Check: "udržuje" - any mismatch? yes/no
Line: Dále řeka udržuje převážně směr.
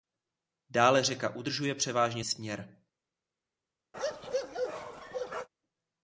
no